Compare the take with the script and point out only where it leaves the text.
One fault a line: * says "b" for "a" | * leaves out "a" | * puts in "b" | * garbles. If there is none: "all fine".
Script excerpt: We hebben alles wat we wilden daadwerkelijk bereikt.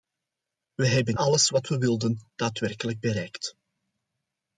all fine